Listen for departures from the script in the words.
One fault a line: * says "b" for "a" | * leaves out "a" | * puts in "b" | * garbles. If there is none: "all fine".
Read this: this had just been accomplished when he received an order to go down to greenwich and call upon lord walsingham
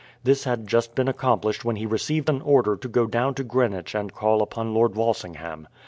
all fine